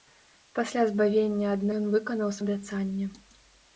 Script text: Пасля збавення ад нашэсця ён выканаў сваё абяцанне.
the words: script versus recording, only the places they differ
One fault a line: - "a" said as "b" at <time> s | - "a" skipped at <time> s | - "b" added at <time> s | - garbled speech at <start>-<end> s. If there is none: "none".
- "нашэсця" skipped at 1.6 s
- "сваё" skipped at 2.3 s